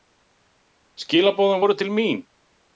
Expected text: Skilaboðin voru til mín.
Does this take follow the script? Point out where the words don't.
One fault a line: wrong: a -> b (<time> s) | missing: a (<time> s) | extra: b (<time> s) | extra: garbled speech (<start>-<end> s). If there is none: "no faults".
no faults